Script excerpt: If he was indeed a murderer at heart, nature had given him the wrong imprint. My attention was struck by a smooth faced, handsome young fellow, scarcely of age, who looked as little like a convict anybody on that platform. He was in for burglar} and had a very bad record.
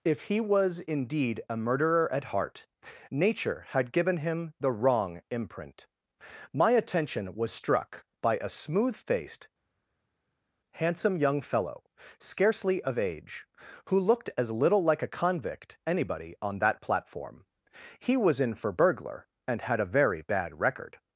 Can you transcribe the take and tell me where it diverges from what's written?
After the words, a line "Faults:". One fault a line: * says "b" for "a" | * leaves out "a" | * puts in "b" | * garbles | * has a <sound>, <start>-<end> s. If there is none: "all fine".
If he was indeed a murderer at heart, nature had given him the wrong imprint. My attention was struck by a smooth faced, handsome young fellow, scarcely of age, who looked as little like a convict anybody on that platform. He was in for burglar} and had a very bad record.
Faults:
all fine